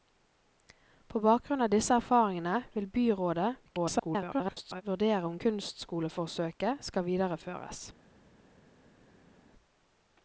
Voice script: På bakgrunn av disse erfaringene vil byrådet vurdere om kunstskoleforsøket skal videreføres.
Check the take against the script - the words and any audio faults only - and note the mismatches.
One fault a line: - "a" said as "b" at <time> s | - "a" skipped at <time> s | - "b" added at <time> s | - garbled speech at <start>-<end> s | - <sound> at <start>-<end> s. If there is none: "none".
- garbled speech at 3.7-4.8 s